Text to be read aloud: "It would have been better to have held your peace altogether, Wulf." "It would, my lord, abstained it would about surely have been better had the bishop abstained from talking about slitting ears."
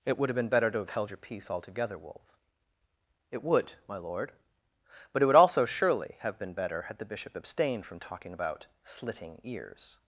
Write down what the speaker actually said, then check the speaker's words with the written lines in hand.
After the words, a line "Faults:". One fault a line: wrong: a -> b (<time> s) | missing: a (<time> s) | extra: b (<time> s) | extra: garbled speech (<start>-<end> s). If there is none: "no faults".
"It would have been better to have held your peace altogether, Wulf." "It would, my lord, but it would also surely have been better had the bishop abstained from talking about slitting ears."
Faults:
wrong: abstained -> but (5.1 s)
wrong: about -> also (5.3 s)